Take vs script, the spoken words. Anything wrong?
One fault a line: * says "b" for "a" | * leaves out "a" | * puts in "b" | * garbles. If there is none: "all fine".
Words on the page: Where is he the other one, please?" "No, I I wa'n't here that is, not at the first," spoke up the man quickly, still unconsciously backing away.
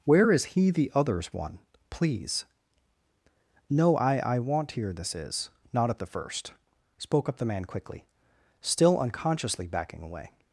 * says "others" for "other"
* says "this" for "that"